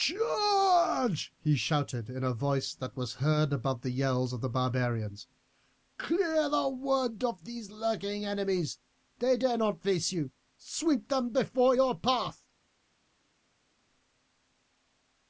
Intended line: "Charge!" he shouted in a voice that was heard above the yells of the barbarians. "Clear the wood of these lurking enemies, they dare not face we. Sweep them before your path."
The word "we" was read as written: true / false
false